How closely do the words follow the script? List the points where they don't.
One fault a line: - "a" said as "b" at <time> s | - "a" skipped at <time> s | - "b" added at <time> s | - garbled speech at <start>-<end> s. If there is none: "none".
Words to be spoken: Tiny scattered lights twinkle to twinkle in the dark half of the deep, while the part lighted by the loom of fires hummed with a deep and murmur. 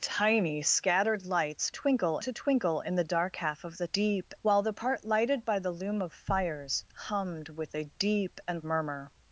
none